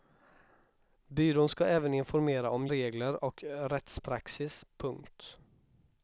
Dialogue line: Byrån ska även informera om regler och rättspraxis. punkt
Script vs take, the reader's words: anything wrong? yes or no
no